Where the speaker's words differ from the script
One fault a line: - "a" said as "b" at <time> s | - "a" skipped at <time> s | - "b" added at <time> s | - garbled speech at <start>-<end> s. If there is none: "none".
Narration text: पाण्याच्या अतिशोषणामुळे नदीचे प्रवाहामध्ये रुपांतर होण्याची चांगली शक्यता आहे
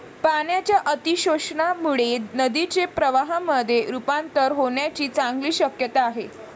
none